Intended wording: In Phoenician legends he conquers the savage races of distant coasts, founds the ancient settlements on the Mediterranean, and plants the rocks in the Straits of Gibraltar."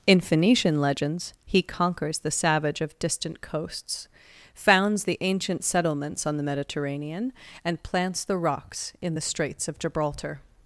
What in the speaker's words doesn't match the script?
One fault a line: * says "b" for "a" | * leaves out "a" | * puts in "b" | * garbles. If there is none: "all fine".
* leaves out "races"